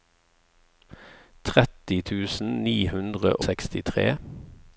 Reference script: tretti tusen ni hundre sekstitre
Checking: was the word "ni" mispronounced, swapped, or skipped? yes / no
no